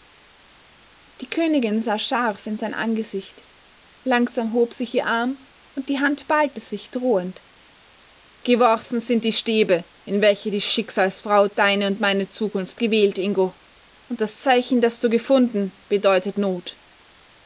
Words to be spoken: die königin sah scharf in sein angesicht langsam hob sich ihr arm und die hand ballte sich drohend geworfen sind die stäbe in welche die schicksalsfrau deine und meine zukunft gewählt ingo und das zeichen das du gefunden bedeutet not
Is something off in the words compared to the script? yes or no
no